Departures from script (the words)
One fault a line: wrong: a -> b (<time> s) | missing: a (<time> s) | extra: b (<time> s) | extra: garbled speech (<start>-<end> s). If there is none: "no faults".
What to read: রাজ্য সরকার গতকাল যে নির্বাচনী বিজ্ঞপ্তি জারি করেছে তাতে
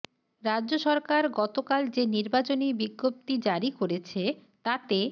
no faults